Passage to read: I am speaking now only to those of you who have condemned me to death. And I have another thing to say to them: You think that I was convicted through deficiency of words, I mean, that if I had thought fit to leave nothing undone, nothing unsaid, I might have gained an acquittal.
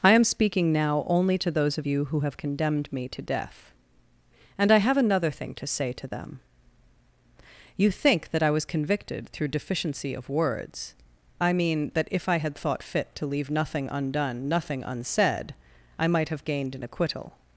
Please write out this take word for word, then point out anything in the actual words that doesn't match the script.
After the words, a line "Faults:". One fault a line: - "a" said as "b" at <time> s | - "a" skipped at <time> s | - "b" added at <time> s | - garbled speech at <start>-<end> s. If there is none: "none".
I am speaking now only to those of you who have condemned me to death. And I have another thing to say to them: You think that I was convicted through deficiency of words, I mean, that if I had thought fit to leave nothing undone, nothing unsaid, I might have gained an acquittal.
Faults:
none